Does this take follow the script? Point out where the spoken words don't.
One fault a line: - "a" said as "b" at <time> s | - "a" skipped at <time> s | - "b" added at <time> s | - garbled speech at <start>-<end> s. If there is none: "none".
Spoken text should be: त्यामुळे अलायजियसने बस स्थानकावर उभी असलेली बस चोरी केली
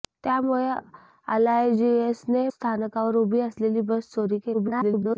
- "बस" skipped at 2.5 s
- garbled speech at 4.5-5.2 s